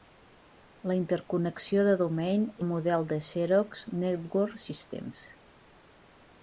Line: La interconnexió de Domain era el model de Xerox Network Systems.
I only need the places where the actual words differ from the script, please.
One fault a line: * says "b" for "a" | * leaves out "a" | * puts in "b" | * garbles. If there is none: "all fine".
* leaves out "era"